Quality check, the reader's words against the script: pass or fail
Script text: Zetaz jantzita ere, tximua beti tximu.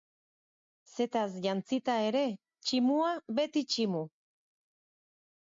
pass